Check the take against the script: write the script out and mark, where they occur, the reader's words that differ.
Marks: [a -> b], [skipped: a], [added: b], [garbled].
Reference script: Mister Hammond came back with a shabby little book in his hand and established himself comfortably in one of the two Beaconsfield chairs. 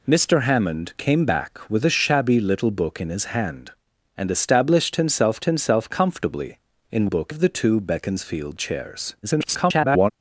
Mister Hammond came back with a shabby little book in his hand and established himself [added: himself] comfortably in [one -> book] of the two Beaconsfield chairs. [garbled]